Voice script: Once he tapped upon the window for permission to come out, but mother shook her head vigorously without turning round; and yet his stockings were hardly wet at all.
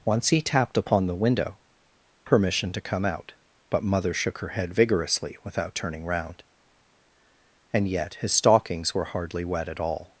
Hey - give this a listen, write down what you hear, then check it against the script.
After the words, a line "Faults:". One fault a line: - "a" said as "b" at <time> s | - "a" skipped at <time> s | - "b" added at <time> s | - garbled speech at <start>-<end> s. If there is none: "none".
Once he tapped upon the window permission to come out, but mother shook her head vigorously without turning round; and yet his stockings were hardly wet at all.
Faults:
- "for" skipped at 1.6 s